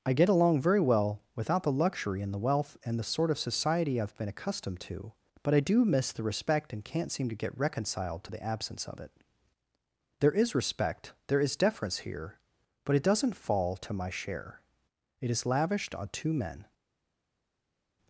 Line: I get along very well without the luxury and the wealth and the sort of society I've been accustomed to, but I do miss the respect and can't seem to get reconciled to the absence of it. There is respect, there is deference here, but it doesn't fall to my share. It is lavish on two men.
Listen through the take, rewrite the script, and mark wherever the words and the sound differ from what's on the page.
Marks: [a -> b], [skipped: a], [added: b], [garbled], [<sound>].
I get along very well without the luxury and the wealth and the sort of society I've been accustomed to, but I do miss the respect and can't seem to get reconciled to the absence of it. There is respect, there is deference here, but it doesn't fall to my share. It is [lavish -> lavished] on two men.